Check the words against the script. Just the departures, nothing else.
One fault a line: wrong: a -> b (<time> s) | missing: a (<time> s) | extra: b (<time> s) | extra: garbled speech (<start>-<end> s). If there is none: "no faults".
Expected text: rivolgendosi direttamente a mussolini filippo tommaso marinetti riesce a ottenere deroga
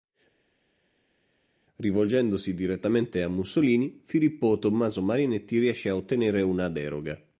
extra: una (6.4 s)